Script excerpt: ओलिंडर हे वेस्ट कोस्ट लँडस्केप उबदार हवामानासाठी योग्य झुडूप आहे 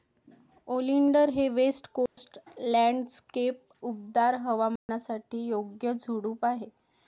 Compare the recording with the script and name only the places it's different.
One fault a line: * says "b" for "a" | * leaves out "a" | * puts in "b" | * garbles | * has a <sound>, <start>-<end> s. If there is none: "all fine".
* has a dropout, 2.1-2.2 s
* has a dropout, 4.8-4.9 s